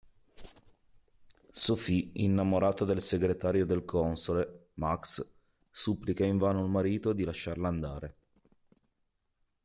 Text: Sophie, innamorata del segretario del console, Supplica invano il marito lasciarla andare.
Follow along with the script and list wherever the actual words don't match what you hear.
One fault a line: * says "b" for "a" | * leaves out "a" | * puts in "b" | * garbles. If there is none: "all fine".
* puts in "Max"
* puts in "di"